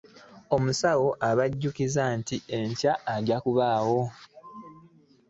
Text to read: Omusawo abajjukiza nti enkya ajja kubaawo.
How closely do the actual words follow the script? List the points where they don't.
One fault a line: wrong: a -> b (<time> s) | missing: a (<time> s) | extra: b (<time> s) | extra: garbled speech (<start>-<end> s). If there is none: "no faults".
no faults